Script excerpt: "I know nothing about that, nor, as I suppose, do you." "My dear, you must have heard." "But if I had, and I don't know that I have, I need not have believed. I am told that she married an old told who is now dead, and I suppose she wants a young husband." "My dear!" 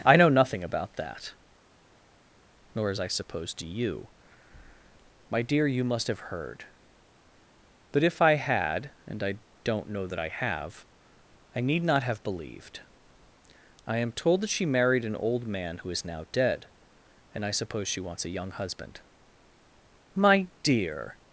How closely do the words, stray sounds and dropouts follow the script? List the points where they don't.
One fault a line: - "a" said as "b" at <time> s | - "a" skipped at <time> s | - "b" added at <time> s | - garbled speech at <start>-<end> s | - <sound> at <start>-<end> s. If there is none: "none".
- "told" said as "man" at 15.5 s